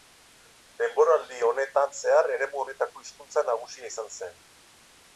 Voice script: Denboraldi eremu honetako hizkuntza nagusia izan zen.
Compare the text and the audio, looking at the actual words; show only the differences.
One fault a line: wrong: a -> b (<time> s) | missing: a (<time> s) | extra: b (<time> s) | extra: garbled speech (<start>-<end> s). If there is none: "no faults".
extra: honetan zehar (1.5 s)